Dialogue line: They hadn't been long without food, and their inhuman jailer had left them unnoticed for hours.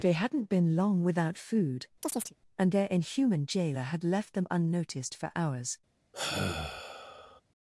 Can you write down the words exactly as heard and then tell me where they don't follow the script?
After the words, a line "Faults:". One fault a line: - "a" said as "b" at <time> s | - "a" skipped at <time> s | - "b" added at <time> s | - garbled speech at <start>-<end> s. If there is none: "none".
They hadn't been long without food, and their inhuman jailer had left them unnoticed for hours.
Faults:
none